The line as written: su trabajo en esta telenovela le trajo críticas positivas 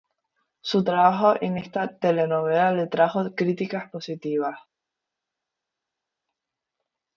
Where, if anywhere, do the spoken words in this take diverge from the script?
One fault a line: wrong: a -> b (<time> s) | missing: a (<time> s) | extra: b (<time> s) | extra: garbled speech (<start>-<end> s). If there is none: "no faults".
no faults